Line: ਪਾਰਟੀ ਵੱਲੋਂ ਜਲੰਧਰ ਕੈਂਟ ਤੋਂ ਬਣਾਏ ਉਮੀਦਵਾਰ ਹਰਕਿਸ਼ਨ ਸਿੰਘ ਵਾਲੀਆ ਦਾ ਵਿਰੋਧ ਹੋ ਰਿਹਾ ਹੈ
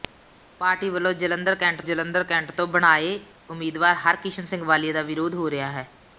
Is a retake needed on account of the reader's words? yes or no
yes